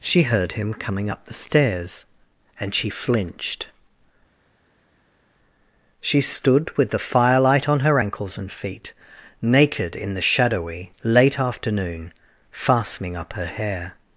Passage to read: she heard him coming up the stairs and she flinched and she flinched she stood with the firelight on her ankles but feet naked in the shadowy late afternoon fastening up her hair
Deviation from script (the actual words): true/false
true